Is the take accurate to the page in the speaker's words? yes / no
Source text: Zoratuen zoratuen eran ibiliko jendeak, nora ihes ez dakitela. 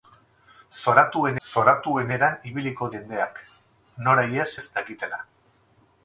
yes